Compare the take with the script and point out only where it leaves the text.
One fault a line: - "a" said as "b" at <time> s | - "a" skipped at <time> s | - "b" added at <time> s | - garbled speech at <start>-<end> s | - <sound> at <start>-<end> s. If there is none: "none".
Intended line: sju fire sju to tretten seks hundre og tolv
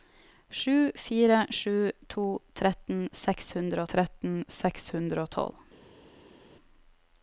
- "tretten seks hundre" added at 3.9 s